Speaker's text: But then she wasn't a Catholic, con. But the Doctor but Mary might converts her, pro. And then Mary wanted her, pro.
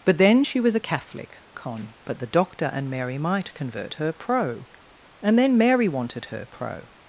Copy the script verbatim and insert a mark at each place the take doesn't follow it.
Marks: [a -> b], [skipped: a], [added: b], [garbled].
But then she [wasn't -> was] a Catholic, con. But the Doctor [but -> and] Mary might [converts -> convert] her, pro. And then Mary wanted her, pro.